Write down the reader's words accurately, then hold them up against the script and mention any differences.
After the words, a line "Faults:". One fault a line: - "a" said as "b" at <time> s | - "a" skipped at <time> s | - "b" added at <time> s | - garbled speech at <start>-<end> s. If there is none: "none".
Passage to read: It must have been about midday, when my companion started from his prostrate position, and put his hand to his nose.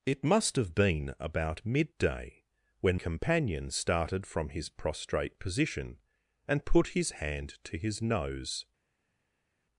It must have been about midday, when companion started from his prostrate position, and put his hand to his nose.
Faults:
- "my" skipped at 3.0 s